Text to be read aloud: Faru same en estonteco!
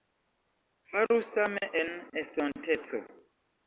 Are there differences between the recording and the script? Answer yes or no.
no